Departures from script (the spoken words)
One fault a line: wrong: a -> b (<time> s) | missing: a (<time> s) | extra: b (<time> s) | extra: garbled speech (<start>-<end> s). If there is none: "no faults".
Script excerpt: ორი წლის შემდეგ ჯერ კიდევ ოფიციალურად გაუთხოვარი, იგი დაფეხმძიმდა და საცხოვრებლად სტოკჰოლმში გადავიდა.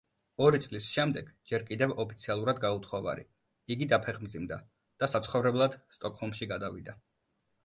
no faults